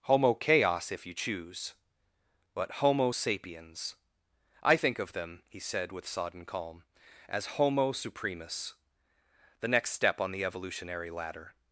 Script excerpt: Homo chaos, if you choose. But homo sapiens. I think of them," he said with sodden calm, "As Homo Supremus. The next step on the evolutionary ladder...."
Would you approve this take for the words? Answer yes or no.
yes